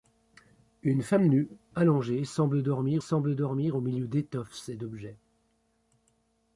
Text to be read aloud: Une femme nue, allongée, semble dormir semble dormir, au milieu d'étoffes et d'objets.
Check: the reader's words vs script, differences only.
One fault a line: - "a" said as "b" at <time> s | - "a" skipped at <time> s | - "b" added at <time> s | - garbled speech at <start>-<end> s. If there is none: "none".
none